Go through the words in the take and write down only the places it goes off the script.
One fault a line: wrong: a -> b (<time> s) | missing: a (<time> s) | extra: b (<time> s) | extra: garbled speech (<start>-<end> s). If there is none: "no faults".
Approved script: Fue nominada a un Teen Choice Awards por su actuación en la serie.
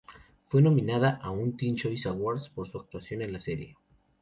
no faults